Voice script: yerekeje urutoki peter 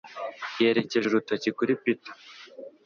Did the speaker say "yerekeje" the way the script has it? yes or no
yes